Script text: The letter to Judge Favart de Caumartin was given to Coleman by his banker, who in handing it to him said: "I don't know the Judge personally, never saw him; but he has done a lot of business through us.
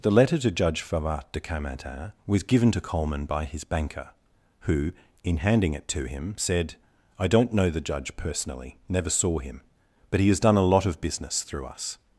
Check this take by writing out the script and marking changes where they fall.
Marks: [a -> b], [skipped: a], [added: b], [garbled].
The letter to Judge Favart de Caumartin was given to Coleman by his banker, who in handing it to him said: "I don't know the Judge personally, never saw him; but he has done a lot of business through us.